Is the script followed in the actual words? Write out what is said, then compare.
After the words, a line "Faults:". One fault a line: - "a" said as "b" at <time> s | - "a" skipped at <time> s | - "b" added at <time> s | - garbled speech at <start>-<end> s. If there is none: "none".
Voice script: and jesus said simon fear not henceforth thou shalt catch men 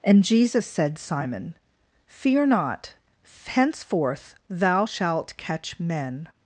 and jesus said simon fear not henceforth thou shalt catch men
Faults:
none